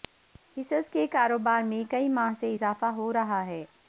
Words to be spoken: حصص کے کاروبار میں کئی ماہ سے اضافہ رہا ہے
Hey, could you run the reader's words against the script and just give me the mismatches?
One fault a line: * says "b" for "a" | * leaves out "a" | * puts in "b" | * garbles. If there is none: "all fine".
* puts in "ہو"